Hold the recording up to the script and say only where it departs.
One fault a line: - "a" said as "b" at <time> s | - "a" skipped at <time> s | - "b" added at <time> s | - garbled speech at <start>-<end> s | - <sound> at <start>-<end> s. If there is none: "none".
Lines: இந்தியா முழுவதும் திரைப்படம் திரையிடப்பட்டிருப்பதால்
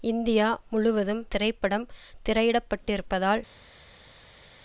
none